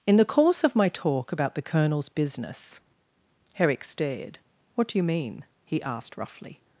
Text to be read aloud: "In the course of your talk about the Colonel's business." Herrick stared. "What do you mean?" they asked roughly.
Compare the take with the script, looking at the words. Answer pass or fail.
fail